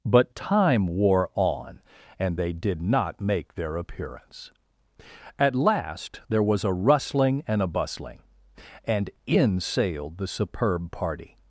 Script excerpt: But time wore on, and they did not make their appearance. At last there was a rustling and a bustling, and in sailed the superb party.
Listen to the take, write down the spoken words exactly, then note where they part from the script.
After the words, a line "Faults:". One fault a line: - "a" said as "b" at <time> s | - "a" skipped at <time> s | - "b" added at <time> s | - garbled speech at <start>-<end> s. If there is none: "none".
But time wore on, and they did not make their appearance. At last there was a rustling and a bustling, and in sailed the superb party.
Faults:
none